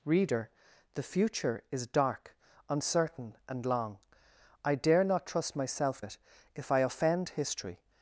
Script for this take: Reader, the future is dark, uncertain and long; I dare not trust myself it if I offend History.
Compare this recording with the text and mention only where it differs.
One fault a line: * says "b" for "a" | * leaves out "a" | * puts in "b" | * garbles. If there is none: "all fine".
all fine